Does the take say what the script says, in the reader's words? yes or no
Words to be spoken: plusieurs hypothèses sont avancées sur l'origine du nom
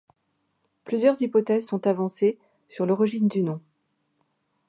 yes